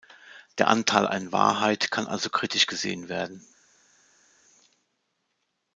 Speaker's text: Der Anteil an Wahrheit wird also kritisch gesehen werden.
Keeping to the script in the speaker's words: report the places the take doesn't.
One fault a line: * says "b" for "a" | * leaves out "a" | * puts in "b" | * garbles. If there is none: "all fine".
* says "kann" for "wird"